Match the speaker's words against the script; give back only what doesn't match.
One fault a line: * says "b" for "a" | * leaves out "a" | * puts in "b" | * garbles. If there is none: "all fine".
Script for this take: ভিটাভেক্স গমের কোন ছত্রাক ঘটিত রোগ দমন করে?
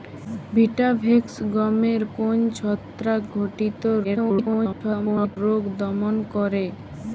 * garbles